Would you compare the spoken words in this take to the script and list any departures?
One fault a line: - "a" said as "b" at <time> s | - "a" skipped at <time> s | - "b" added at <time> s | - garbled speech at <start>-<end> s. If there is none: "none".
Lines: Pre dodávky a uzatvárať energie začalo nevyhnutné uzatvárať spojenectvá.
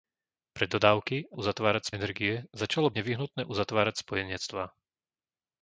none